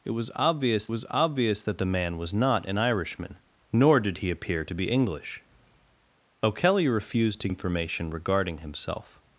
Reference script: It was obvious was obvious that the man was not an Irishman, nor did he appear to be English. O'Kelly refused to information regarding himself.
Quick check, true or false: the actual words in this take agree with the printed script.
true